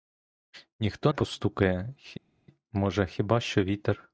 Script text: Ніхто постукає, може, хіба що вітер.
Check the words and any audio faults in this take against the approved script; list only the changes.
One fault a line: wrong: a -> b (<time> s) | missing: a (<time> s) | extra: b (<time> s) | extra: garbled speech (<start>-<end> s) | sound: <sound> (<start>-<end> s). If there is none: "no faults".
no faults